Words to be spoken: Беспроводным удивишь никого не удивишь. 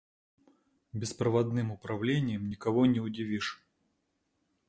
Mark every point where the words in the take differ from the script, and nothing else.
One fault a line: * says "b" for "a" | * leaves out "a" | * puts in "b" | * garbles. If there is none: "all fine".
* says "управлением" for "удивишь"